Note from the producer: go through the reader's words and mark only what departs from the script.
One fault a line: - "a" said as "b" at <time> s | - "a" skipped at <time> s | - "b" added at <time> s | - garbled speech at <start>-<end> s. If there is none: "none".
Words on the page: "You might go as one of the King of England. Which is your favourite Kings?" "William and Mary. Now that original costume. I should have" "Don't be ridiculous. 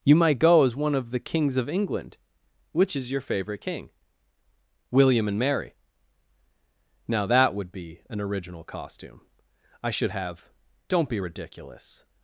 - "King" said as "Kings" at 1.2 s
- "Kings" said as "King" at 3.6 s
- "would be an" added at 7.5 s